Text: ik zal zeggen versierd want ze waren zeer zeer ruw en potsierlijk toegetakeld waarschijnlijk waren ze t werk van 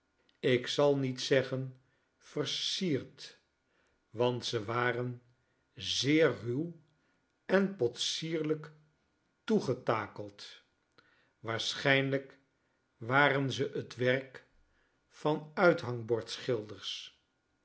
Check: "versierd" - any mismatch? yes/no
no